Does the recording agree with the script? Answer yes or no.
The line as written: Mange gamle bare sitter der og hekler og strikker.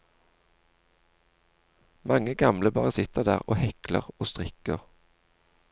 yes